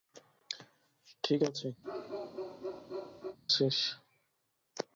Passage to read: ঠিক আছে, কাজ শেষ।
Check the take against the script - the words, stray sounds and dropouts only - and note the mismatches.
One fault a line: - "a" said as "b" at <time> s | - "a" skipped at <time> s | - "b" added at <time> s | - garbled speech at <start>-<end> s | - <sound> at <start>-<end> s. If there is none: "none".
- "কাজ" skipped at 1.7 s
- bark at 1.8-3.4 s